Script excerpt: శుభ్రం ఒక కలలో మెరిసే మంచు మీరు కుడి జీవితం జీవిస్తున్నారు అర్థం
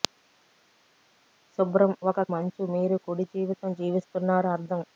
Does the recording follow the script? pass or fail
fail